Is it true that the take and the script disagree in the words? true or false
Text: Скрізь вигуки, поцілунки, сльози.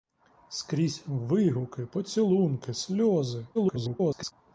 true